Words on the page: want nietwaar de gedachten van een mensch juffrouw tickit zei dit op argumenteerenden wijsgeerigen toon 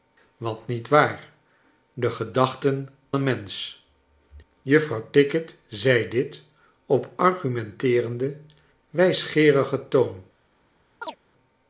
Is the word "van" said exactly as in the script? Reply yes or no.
no